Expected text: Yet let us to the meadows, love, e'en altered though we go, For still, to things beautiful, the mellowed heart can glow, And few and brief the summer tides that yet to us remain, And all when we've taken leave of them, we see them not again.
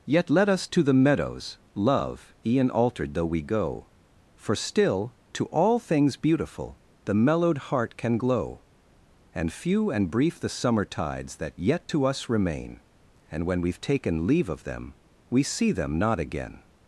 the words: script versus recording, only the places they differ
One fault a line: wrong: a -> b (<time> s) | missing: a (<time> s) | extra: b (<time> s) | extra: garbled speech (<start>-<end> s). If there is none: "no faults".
extra: all (5.5 s)
missing: all (13.5 s)